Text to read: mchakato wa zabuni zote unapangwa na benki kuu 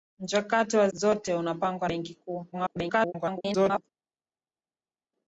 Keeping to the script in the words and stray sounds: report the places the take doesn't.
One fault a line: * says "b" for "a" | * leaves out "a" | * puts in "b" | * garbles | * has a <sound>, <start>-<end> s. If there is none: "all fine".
* leaves out "zabuni"
* leaves out "na"
* garbles